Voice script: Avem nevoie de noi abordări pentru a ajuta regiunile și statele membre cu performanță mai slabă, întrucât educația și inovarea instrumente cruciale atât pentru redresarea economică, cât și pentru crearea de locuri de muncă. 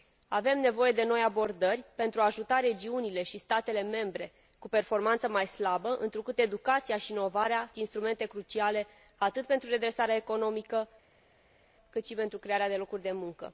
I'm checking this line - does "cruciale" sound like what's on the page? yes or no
yes